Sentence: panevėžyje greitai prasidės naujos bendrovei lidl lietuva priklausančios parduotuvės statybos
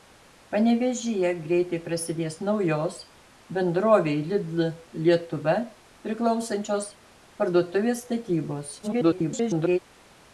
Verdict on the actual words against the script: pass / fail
fail